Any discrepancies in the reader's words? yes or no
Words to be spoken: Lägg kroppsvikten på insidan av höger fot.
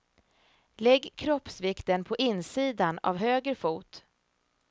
no